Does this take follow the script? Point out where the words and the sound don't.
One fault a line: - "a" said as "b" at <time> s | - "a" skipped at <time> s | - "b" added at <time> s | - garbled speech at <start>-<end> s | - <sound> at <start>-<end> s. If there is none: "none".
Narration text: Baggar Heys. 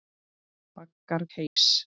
- dropout at 1.5-1.6 s